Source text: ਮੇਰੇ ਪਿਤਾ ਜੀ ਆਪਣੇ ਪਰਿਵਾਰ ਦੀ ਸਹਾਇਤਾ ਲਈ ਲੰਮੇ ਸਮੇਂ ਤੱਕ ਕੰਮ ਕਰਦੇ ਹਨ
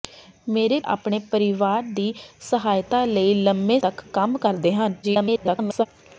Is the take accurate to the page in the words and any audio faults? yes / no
no